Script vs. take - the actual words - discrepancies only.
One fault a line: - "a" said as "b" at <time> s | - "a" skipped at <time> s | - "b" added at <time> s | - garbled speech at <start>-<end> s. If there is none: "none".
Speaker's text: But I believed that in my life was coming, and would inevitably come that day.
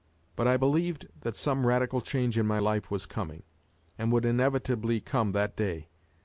- "some radical change" added at 1.4 s